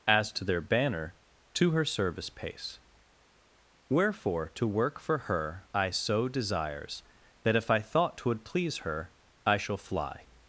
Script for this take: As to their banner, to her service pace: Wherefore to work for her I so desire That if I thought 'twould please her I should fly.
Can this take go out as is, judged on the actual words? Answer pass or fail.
fail